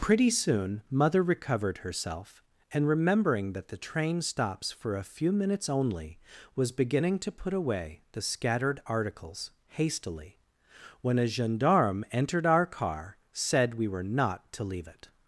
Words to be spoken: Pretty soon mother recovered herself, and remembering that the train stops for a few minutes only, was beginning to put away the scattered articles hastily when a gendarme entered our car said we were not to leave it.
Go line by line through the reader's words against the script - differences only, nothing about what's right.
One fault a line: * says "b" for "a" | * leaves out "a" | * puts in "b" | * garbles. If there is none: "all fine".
all fine